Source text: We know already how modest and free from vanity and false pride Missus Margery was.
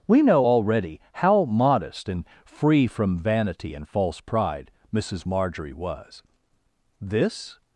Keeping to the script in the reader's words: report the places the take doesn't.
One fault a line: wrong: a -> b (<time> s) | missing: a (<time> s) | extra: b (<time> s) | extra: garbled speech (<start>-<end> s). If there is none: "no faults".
extra: This (7.0 s)